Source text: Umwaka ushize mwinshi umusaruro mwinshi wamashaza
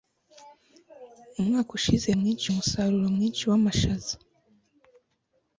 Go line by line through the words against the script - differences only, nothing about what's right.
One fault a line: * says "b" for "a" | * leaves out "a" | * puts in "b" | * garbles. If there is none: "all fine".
all fine